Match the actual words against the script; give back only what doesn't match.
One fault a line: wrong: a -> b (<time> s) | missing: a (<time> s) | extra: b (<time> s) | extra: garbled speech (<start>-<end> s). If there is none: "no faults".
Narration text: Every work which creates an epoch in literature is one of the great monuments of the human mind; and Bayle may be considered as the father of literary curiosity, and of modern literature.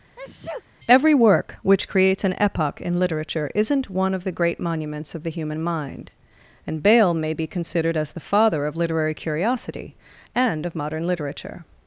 wrong: is -> isn't (3.5 s)